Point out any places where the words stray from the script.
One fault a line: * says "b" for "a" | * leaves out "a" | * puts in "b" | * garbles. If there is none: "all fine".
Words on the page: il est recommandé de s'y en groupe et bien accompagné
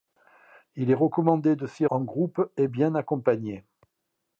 all fine